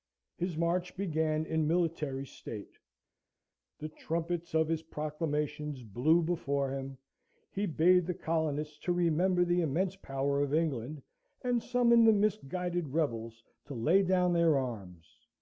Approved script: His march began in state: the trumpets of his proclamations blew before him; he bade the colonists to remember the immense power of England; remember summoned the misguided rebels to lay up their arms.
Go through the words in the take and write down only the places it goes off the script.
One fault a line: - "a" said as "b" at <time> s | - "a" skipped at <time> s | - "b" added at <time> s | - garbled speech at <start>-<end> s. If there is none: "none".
- "military" added at 1.7 s
- "remember" said as "and" at 11.4 s
- "up" said as "down" at 14.0 s